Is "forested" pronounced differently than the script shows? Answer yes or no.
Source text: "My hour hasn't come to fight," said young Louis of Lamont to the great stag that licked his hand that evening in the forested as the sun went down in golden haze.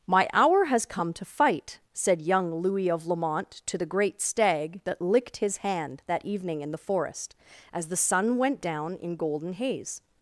yes